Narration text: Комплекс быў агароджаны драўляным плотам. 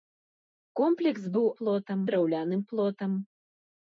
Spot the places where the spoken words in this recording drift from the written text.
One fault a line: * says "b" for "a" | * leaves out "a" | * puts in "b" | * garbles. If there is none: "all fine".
* says "плотам" for "агароджаны"